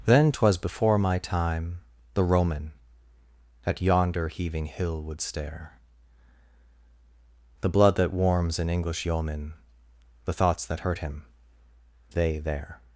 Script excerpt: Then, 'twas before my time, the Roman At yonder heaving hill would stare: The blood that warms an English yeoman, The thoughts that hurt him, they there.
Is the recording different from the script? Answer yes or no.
no